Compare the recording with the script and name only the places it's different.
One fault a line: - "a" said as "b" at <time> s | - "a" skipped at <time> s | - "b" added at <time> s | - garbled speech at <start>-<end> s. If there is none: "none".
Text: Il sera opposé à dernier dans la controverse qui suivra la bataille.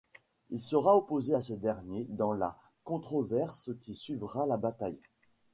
- "ce" added at 1.4 s